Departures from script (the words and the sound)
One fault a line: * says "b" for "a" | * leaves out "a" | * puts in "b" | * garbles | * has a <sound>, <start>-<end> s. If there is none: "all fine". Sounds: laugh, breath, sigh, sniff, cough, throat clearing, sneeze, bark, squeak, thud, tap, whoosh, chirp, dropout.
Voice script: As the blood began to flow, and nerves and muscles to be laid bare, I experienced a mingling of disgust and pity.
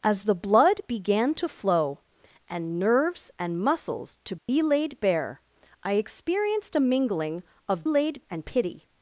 * has a dropout, 4.4-4.5 s
* says "laid" for "disgust"